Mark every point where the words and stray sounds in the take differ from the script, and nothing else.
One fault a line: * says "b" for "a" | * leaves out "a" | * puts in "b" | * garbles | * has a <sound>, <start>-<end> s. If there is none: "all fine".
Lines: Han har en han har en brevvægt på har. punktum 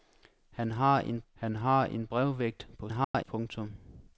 * has a dropout, 3.0-3.1 s